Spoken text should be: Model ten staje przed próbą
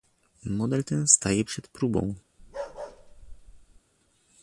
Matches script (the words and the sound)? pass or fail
fail